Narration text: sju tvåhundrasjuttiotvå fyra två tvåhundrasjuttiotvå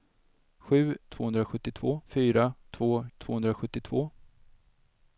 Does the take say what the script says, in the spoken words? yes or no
yes